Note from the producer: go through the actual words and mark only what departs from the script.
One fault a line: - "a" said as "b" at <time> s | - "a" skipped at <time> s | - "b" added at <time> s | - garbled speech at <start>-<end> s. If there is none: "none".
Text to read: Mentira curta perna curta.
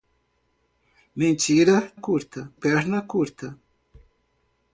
none